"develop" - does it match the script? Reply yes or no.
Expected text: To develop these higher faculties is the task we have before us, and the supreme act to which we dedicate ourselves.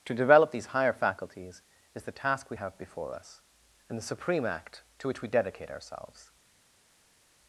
yes